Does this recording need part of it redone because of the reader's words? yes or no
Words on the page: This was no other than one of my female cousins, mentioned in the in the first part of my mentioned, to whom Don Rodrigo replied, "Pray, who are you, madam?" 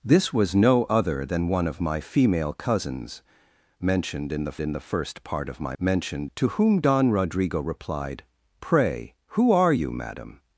no